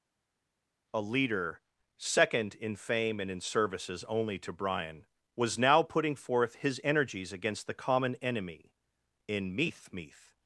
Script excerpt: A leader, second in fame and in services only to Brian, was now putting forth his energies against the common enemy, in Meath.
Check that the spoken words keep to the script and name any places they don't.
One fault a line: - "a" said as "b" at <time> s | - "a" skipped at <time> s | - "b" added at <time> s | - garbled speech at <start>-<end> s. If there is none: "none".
- "Meath" added at 9.9 s